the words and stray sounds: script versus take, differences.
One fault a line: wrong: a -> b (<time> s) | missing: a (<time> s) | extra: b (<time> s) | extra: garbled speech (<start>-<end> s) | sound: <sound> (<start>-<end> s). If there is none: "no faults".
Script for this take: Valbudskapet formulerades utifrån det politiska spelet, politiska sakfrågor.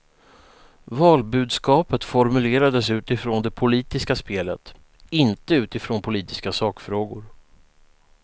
extra: inte utifrån (5.1 s)